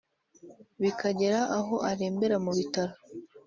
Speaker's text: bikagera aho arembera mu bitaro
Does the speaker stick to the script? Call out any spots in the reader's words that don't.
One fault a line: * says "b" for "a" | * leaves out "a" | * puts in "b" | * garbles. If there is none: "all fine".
all fine